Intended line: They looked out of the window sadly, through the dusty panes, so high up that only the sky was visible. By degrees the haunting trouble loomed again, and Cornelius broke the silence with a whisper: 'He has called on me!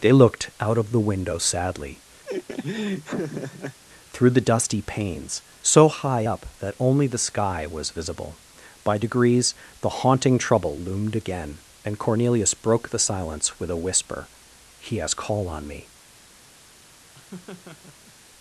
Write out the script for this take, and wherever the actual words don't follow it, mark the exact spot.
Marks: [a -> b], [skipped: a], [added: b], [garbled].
They looked out of the window sadly, through the dusty panes, so high up that only the sky was visible. By degrees the haunting trouble loomed again, and Cornelius broke the silence with a whisper: 'He has [called -> call] on me!